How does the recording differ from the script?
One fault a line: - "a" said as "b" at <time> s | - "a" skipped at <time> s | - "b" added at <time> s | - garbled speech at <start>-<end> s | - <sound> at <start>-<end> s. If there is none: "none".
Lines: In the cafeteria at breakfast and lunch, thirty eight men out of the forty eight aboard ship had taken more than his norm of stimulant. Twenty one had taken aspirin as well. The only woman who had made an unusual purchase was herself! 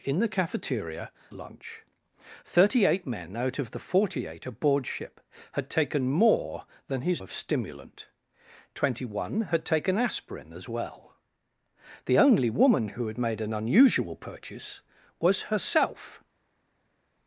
- "at breakfast and" skipped at 1.1 s
- "norm" skipped at 7.2 s